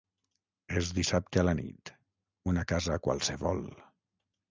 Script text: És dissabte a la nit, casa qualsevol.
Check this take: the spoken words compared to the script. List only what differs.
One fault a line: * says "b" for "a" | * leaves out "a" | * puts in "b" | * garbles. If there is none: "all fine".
* puts in "una"